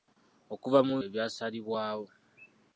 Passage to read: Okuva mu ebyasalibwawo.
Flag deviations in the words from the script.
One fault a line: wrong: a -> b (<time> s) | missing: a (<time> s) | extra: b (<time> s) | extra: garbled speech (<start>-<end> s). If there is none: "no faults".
no faults